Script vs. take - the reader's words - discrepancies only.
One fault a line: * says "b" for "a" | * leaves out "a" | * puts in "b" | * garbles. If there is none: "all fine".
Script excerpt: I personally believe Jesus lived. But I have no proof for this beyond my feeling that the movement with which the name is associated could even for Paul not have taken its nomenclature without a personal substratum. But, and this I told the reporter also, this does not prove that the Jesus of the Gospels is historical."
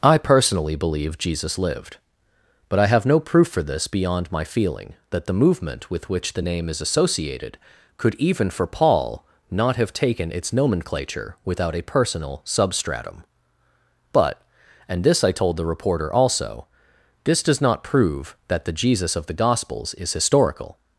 all fine